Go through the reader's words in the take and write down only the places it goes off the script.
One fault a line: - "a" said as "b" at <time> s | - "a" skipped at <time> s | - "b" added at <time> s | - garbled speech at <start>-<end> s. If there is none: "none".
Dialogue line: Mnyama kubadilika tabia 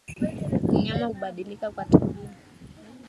- "kwa" added at 1.7 s